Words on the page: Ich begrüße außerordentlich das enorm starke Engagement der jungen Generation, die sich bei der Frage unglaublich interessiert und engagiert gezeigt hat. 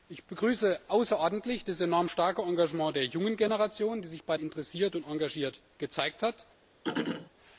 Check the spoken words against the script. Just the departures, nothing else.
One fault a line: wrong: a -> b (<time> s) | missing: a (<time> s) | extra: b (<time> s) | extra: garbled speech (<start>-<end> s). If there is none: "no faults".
missing: der Frage unglaublich (4.4 s)